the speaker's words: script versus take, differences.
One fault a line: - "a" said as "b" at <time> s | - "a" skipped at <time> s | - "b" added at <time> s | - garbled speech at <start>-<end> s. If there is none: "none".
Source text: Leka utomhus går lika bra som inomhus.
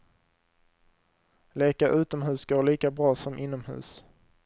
none